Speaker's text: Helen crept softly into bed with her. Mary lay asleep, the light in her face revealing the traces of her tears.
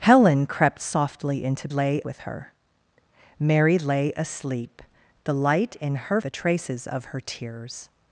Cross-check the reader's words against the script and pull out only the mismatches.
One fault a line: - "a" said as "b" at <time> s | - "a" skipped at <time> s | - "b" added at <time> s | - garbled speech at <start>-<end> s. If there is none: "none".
- "bed" said as "lay" at 1.7 s
- "face revealing" skipped at 6.2 s